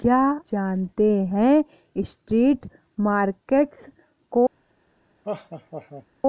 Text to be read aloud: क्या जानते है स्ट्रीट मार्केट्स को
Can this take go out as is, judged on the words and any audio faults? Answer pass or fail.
fail